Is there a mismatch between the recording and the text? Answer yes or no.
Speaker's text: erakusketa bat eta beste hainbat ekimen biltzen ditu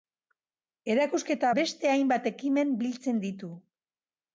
yes